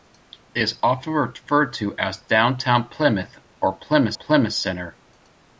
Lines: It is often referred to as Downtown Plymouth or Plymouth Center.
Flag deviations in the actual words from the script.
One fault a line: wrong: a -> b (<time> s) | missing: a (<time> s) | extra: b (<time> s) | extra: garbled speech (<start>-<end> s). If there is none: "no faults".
extra: Plymouth (4.1 s)